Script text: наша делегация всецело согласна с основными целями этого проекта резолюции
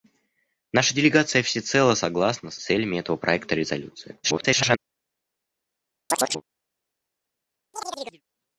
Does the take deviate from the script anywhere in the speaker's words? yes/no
yes